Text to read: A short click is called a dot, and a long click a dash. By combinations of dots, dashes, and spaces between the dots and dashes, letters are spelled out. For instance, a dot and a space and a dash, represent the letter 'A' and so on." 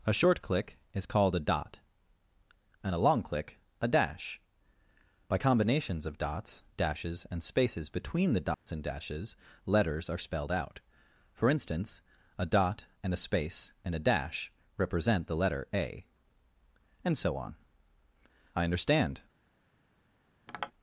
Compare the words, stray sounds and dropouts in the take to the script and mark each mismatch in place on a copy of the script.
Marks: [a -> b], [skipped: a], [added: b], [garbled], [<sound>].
A short click is called a dot, and a long click a dash. By combinations of dots, dashes, and spaces between the dots [dropout] and dashes, letters are spelled out. For instance, a dot and a space and a dash, represent the letter 'A' and so on." [added: I understand] [tap]